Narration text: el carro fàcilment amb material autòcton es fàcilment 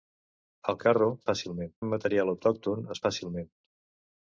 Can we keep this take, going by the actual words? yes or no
yes